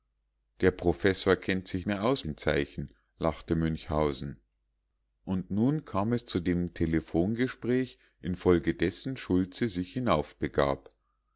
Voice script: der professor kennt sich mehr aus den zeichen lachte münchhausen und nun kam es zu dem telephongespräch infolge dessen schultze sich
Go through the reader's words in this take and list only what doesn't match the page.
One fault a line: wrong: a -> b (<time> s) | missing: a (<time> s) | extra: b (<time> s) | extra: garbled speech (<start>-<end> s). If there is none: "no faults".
no faults